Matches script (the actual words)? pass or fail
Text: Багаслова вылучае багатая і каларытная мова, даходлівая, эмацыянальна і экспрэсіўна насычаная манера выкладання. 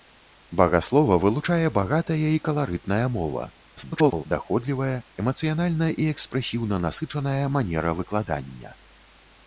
fail